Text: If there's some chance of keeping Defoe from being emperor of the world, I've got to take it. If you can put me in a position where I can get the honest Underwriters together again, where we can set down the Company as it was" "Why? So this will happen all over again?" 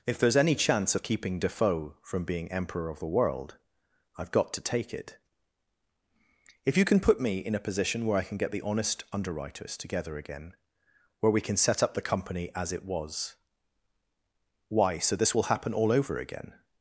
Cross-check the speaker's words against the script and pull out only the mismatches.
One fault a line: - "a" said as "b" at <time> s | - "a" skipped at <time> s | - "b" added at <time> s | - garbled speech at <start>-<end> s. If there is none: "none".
- "some" said as "any" at 0.4 s
- "down" said as "up" at 11.8 s